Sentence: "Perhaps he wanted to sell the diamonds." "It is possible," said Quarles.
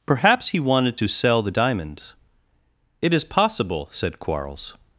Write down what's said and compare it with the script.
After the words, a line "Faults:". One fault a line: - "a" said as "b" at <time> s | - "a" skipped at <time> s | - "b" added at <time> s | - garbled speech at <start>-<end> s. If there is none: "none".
"Perhaps he wanted to sell the diamonds." "It is possible," said Quarles.
Faults:
none